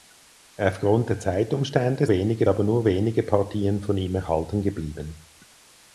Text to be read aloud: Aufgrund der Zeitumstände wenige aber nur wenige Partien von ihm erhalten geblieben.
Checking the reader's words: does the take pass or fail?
pass